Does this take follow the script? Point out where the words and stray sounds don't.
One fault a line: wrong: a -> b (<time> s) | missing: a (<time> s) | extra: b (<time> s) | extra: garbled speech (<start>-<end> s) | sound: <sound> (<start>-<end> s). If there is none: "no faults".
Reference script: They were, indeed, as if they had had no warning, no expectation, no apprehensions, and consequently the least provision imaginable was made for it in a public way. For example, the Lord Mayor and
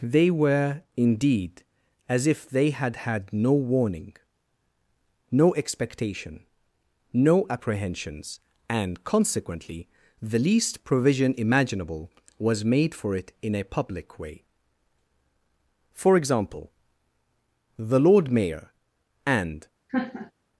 sound: laugh (19.9-20.3 s)